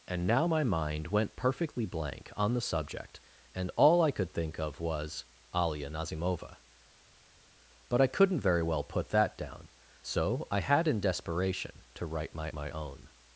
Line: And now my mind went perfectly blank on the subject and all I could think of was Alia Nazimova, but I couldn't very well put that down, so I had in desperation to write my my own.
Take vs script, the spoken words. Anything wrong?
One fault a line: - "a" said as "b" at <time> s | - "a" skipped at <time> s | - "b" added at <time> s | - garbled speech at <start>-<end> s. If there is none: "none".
none